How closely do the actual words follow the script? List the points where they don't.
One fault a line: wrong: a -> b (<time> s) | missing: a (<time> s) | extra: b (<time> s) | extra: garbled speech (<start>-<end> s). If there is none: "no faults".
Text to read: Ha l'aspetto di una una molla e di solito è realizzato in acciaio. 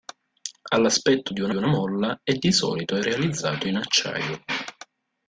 no faults